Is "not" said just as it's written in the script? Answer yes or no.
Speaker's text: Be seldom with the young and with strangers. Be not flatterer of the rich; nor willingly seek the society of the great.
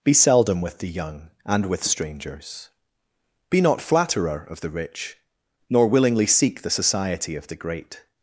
yes